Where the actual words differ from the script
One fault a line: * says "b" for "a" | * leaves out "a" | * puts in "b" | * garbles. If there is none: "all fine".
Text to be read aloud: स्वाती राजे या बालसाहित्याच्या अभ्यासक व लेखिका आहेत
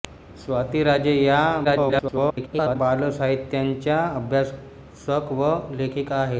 * garbles